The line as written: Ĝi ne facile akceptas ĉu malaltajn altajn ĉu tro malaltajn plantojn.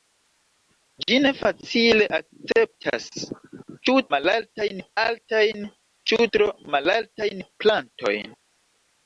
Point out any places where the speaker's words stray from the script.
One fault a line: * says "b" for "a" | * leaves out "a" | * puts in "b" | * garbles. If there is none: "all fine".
all fine